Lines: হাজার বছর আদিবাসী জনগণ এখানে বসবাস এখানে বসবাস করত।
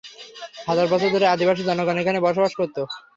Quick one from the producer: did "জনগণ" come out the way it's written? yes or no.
yes